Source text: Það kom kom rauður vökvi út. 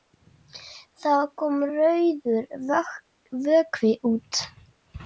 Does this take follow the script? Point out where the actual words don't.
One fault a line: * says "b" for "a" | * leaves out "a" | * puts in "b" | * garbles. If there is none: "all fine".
* leaves out "kom"